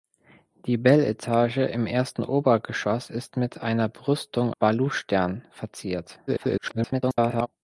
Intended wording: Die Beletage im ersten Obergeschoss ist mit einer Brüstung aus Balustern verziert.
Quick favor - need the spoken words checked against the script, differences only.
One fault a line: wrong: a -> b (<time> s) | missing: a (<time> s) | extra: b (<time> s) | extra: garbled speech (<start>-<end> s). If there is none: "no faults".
missing: aus (4.5 s)
extra: garbled speech (6.3-7.5 s)